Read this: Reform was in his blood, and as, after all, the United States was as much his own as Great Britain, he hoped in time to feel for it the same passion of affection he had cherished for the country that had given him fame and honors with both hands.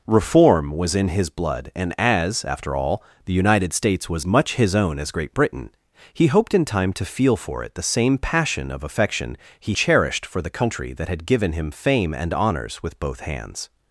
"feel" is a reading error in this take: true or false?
false